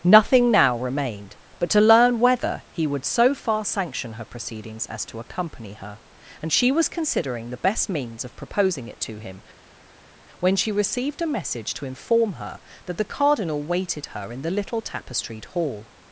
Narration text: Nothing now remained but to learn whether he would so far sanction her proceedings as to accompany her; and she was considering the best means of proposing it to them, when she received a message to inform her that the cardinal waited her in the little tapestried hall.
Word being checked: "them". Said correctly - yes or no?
no